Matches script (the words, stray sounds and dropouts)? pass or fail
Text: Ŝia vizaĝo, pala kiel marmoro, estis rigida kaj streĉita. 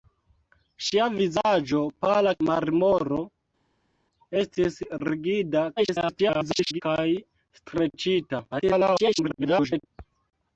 fail